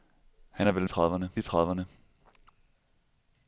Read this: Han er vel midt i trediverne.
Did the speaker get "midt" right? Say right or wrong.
wrong